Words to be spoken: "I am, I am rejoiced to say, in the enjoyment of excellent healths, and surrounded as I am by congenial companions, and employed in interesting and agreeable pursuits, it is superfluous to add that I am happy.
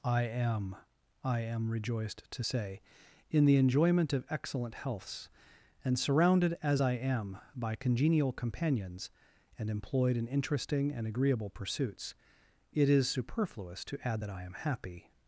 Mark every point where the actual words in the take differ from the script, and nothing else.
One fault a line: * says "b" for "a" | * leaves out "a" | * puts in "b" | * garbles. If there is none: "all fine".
all fine